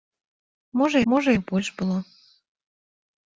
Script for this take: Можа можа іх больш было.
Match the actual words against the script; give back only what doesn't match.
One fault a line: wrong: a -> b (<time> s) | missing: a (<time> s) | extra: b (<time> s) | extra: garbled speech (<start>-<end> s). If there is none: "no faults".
no faults